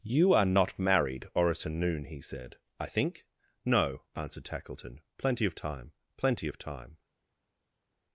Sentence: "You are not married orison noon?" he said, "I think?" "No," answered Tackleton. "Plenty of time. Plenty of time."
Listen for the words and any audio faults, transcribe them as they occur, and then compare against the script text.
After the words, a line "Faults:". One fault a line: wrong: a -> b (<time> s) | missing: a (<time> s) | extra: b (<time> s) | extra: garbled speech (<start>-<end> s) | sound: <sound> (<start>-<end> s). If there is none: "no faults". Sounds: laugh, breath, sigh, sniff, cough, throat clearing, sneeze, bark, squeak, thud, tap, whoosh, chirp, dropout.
"You are not married orison noon?" he said, "I think?" "No," answered Tackleton. "Plenty of time. Plenty of time."
Faults:
no faults